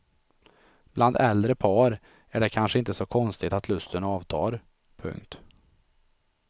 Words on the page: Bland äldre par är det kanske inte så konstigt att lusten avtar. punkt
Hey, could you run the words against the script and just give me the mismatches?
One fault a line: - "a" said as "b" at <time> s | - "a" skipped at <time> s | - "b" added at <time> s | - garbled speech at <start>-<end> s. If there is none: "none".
none